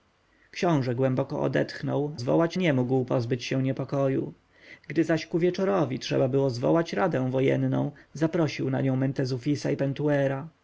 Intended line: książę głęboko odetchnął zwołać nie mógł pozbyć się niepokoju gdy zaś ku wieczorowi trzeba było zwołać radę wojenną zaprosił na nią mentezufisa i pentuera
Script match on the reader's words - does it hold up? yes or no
yes